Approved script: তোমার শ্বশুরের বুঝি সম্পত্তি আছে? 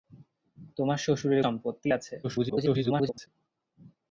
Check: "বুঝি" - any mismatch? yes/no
yes